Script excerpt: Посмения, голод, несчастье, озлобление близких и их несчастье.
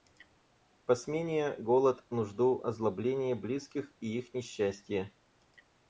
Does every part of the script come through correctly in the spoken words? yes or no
no